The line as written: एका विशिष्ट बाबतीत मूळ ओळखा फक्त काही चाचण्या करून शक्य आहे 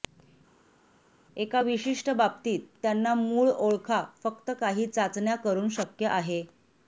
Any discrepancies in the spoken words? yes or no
yes